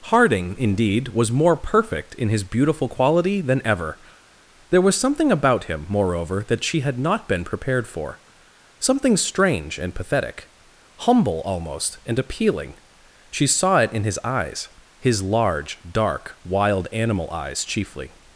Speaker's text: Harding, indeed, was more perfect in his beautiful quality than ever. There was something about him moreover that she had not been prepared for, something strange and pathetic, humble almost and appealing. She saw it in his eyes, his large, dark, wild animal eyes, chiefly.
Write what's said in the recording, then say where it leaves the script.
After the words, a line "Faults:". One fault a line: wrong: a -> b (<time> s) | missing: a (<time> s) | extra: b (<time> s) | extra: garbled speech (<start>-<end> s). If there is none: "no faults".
Harding, indeed, was more perfect in his beautiful quality than ever. There was something about him moreover that she had not been prepared for, something strange and pathetic, humble almost and appealing. She saw it in his eyes, his large, dark, wild animal eyes, chiefly.
Faults:
no faults